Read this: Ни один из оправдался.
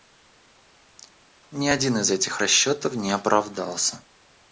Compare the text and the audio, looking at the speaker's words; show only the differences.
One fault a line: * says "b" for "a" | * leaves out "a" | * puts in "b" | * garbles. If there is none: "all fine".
* puts in "этих расчетов не"